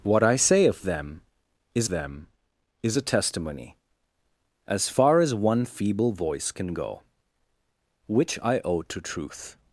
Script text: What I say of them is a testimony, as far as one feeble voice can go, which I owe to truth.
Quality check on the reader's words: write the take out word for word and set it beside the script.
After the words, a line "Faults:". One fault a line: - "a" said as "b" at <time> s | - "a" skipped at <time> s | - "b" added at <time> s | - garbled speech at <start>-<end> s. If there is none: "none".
What I say of them is them is a testimony, as far as one feeble voice can go, which I owe to truth.
Faults:
- "them is" added at 1.9 s